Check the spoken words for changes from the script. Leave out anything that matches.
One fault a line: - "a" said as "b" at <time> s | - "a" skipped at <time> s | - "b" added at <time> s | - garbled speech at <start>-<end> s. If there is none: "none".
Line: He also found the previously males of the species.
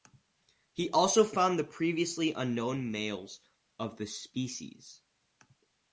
- "unknown" added at 2.3 s